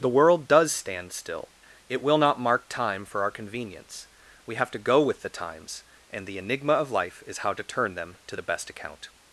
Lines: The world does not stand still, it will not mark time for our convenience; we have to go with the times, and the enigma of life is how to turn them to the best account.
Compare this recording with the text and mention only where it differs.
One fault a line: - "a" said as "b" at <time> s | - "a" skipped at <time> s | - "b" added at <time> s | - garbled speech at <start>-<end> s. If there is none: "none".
- "not" skipped at 0.7 s